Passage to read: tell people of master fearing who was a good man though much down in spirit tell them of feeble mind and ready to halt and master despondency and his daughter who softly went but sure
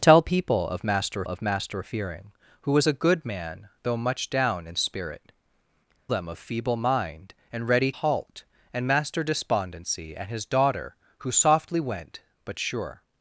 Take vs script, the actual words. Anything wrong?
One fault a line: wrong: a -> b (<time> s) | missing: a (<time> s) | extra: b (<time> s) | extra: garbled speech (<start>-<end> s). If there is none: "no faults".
extra: of master (1.2 s)
missing: tell (5.3 s)
missing: to (7.9 s)